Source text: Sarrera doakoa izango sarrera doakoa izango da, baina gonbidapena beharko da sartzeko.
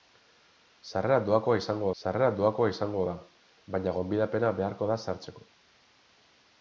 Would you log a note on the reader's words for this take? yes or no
no